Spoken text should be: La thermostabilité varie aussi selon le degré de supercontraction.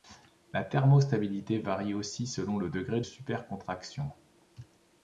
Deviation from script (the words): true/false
true